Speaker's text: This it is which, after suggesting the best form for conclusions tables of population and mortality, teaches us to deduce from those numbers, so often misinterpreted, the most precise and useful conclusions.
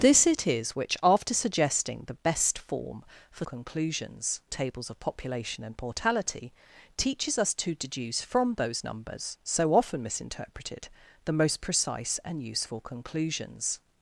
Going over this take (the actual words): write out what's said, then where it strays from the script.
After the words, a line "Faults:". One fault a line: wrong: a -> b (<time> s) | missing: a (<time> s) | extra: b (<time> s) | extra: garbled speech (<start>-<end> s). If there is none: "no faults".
This it is which, after suggesting the best form for conclusions tables of population and mortality, teaches us to deduce from those numbers, so often misinterpreted, the most precise and useful conclusions.
Faults:
no faults